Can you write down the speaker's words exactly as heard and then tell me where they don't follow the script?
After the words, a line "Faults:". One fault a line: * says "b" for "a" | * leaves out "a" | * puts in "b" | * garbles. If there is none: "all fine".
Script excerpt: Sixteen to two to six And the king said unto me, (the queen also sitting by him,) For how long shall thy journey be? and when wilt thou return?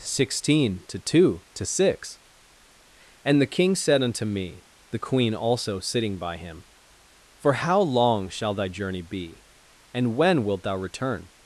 Sixteen to two to six And the king said unto me, (the queen also sitting by him,) For how long shall thy journey be? and when wilt thou return?
Faults:
all fine